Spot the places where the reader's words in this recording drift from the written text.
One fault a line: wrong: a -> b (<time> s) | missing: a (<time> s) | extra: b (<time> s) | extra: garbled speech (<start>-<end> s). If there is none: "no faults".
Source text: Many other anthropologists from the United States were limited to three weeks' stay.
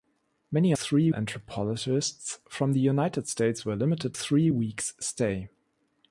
wrong: other -> three (0.7 s)
missing: to (4.1 s)